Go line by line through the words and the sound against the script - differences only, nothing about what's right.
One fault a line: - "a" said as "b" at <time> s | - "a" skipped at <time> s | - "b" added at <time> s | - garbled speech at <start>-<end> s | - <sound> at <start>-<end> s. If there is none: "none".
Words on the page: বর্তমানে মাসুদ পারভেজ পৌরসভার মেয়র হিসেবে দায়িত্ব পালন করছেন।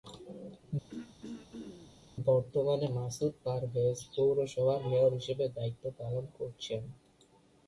- throat clearing at 0.9-2.0 s